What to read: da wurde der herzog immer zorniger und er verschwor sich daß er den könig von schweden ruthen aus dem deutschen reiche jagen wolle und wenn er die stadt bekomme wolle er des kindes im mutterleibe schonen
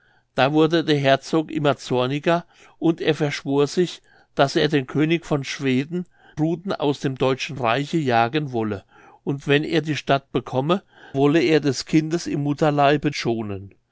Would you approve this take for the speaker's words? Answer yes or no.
yes